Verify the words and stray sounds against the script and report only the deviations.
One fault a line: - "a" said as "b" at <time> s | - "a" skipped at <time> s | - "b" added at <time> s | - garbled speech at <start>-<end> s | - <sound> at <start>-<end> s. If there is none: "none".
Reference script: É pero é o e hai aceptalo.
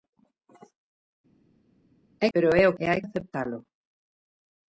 none